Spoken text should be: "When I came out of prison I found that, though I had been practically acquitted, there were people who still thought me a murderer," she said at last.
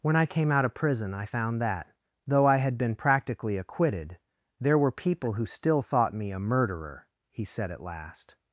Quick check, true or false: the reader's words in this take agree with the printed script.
false